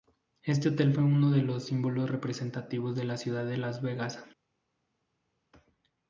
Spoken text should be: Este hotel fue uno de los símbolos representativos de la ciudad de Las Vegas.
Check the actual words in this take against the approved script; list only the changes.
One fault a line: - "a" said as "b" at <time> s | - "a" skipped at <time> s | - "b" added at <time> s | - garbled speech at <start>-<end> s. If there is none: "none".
none